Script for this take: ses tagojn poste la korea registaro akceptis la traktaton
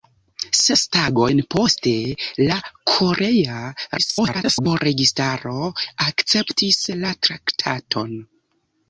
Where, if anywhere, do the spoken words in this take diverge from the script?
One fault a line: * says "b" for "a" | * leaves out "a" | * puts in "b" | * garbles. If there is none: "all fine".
* garbles